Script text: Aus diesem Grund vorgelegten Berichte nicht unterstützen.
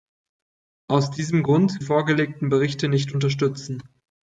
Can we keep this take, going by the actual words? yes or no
yes